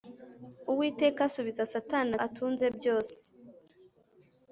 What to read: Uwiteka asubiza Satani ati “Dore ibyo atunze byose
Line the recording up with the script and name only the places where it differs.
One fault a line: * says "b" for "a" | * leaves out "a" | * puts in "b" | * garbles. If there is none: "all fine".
* leaves out "ati Dore ibyo"